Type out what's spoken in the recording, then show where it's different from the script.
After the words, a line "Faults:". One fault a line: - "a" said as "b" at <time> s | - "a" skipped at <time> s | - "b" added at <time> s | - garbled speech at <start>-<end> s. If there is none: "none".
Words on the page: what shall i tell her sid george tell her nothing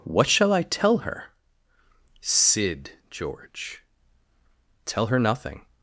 what shall i tell her sid george tell her nothing
Faults:
none